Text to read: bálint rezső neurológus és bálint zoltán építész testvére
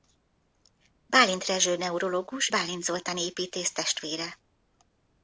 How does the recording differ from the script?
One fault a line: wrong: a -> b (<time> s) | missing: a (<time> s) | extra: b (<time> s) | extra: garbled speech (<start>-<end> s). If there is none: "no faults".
missing: és (2.5 s)